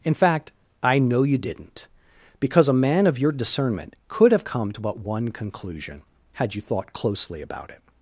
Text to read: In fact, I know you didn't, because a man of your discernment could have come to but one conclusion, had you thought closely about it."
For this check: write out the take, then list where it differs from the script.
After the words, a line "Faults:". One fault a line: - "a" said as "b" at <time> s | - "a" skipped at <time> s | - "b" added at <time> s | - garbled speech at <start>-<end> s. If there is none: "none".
In fact, I know you didn't, because a man of your discernment could have come to but one conclusion, had you thought closely about it."
Faults:
none